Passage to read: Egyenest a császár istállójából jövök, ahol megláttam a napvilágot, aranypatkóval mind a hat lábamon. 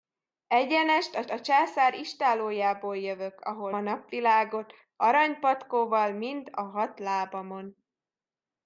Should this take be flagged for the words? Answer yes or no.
yes